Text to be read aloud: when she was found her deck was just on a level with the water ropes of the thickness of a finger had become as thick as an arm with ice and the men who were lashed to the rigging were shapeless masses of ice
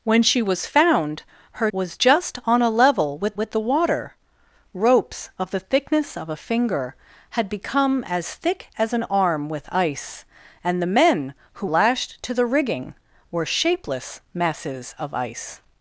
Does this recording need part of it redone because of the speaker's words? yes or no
yes